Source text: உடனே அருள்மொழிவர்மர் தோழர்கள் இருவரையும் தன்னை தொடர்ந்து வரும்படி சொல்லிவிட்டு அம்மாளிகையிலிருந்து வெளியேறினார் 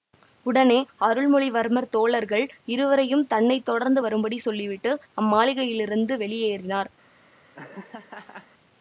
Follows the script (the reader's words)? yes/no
yes